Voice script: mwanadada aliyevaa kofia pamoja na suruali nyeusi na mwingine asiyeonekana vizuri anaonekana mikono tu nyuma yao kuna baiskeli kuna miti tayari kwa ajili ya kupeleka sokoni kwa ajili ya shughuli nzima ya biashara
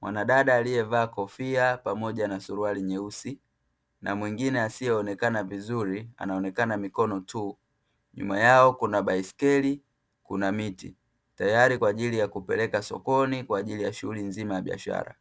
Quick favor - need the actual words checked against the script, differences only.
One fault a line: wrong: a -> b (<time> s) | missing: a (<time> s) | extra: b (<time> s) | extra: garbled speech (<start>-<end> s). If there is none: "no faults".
no faults